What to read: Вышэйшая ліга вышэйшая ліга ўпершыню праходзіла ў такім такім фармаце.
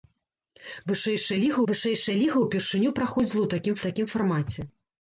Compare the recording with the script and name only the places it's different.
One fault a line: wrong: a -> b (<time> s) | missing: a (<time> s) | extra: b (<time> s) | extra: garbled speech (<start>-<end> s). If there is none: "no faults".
no faults